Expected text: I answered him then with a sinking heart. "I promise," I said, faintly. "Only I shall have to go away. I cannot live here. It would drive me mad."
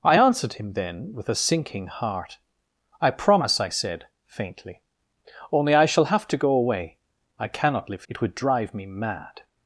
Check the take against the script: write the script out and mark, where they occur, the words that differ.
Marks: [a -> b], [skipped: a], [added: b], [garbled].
I answered him then with a sinking heart. "I promise," I said, faintly. "Only I shall have to go away. I cannot live [skipped: here.] It would drive me mad."